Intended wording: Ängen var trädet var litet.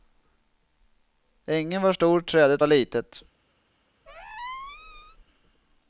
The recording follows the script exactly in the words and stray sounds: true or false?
false